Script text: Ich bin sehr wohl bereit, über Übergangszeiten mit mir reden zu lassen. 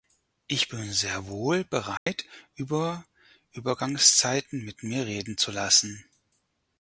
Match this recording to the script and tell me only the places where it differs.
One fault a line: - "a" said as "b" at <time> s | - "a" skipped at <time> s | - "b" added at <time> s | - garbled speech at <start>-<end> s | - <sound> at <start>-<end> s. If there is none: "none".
- dropout at 2.0-2.1 s